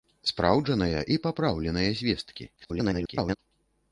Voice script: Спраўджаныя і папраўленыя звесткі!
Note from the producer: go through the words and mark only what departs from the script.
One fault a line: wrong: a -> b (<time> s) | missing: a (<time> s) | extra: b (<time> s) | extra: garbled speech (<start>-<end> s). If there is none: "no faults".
extra: garbled speech (2.6-3.4 s)